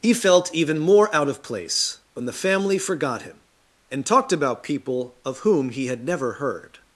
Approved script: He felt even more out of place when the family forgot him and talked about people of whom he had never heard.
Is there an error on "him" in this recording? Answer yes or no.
no